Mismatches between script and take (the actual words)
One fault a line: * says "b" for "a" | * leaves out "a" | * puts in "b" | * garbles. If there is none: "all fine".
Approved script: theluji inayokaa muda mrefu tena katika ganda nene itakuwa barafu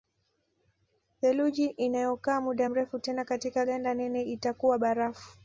all fine